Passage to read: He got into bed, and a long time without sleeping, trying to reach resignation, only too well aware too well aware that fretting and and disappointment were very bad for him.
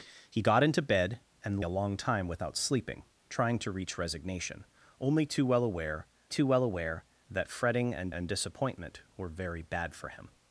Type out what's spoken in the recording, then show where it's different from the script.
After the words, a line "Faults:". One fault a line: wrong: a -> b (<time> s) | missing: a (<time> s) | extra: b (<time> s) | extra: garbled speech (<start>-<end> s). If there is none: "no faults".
He got into bed, and a long time without sleeping, trying to reach resignation, only too well aware too well aware that fretting and and disappointment were very bad for him.
Faults:
no faults